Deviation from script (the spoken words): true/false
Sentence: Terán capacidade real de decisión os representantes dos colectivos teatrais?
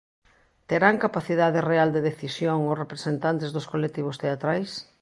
false